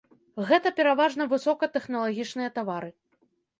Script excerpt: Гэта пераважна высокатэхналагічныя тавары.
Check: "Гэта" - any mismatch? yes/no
no